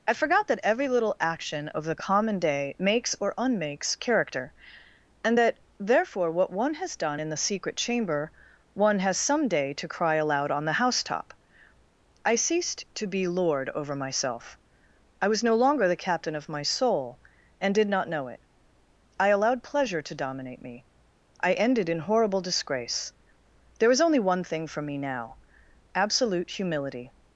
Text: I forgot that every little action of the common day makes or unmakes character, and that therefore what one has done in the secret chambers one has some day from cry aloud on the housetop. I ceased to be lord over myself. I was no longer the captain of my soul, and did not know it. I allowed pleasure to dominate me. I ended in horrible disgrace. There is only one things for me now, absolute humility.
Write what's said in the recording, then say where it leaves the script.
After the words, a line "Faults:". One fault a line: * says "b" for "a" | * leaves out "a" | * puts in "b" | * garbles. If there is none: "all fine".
I forgot that every little action of the common day makes or unmakes character, and that therefore what one has done in the secret chamber one has some day to cry aloud on the housetop. I ceased to be lord over myself. I was no longer the captain of my soul, and did not know it. I allowed pleasure to dominate me. I ended in horrible disgrace. There is only one thing for me now, absolute humility.
Faults:
* says "chamber" for "chambers"
* says "to" for "from"
* says "thing" for "things"